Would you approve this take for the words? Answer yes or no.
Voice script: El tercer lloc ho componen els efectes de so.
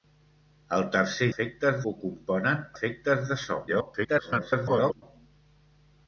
no